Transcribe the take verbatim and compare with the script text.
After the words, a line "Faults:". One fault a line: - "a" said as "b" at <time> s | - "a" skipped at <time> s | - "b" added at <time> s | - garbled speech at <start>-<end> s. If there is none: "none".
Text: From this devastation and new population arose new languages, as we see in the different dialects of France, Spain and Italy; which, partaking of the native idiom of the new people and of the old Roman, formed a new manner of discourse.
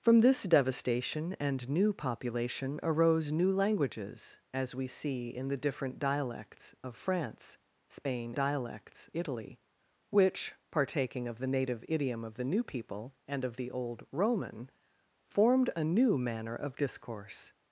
From this devastation and new population arose new languages, as we see in the different dialects of France, Spain dialects Italy; which, partaking of the native idiom of the new people and of the old Roman, formed a new manner of discourse.
Faults:
- "and" said as "dialects" at 8.3 s